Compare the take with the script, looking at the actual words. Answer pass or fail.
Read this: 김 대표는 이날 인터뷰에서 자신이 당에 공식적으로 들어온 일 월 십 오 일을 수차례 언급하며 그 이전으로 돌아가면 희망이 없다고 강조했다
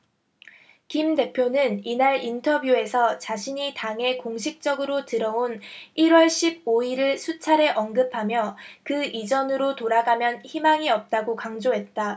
pass